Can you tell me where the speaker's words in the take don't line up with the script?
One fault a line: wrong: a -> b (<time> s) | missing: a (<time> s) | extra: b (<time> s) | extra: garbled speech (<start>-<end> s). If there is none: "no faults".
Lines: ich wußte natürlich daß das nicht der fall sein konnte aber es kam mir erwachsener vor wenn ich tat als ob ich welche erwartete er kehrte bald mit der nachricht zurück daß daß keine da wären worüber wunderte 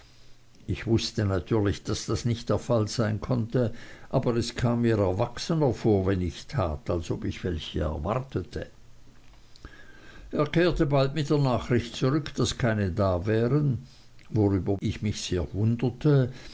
missing: daß (12.6 s)
extra: ich mich sehr (14.8 s)